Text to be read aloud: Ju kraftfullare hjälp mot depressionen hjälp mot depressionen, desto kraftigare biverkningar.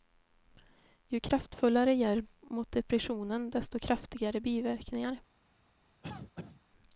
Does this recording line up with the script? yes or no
no